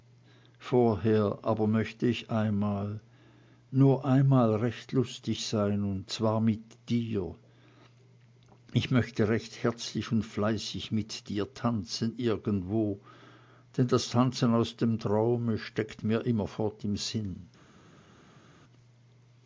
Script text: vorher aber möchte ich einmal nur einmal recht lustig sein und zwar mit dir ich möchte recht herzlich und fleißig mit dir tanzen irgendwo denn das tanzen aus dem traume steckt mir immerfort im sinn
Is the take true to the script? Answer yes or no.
yes